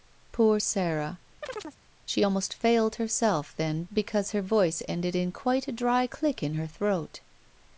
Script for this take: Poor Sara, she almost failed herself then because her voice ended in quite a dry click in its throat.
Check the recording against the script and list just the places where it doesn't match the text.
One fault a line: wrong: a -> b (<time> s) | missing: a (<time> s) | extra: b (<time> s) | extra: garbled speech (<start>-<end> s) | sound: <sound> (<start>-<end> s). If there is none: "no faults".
sound: chirp (1.4-1.8 s)
wrong: its -> her (6.5 s)